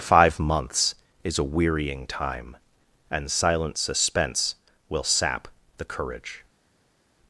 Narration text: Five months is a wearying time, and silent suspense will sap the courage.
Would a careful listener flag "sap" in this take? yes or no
no